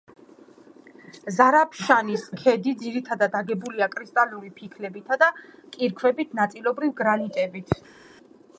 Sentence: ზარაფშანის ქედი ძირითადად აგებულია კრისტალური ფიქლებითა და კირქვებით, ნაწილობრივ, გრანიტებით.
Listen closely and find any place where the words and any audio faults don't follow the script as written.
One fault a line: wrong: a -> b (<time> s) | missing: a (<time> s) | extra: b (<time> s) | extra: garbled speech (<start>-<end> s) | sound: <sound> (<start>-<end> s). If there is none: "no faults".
no faults